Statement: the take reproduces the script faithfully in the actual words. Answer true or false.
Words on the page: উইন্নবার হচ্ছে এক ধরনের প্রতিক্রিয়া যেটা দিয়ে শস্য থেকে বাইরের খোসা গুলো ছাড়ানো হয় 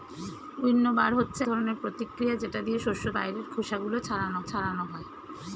false